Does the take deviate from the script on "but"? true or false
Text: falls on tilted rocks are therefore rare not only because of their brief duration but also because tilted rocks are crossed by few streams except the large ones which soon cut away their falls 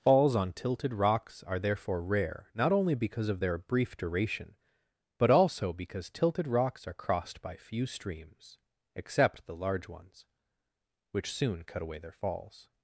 false